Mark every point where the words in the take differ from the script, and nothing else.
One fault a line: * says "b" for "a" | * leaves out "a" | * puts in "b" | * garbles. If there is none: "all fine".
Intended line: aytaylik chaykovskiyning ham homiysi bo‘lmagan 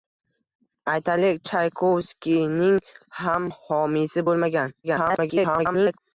* garbles